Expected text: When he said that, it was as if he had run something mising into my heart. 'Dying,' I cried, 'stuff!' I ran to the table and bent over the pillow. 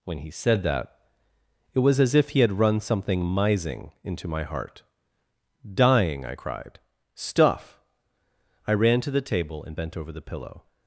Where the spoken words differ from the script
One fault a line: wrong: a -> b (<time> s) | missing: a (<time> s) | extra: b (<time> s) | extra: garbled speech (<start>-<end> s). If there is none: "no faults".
no faults